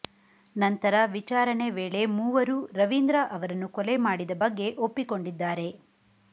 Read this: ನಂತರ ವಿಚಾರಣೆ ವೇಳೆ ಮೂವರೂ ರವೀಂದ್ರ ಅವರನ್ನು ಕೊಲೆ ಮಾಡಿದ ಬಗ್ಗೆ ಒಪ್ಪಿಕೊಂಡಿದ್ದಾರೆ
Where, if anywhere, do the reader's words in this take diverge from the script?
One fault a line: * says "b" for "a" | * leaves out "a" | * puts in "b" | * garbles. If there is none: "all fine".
all fine